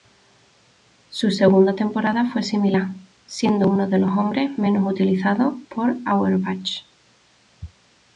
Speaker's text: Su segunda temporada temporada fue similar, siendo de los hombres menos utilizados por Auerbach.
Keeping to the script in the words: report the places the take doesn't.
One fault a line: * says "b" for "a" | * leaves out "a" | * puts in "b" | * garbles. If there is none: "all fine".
* leaves out "temporada"
* puts in "uno"